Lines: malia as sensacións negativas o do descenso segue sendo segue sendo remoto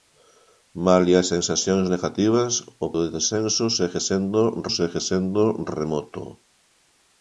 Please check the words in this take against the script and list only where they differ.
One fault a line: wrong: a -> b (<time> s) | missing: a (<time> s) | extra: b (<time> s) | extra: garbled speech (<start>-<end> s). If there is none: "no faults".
no faults